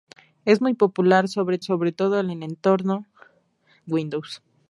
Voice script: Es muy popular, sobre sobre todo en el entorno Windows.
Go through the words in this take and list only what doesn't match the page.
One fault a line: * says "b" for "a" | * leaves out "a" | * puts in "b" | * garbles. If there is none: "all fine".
all fine